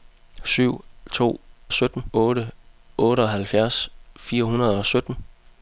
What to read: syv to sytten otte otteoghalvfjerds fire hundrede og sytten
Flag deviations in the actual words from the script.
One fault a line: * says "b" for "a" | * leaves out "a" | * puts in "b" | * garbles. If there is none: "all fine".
all fine